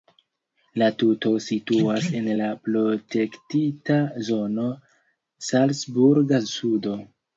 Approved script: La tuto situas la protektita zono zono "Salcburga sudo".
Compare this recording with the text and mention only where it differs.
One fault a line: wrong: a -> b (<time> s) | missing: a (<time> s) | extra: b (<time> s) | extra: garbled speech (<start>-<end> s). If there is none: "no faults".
extra: en (2.2 s)
missing: zono (4.7 s)